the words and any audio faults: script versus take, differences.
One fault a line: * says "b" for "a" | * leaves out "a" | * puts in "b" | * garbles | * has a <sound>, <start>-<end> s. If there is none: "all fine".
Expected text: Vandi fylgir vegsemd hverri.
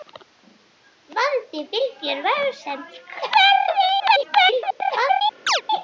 * garbles
* has a chirp, 5.5-5.6 s